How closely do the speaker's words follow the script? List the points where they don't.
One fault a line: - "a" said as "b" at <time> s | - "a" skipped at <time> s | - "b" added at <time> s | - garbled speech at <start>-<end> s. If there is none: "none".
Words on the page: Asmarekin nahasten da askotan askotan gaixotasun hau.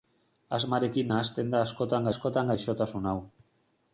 none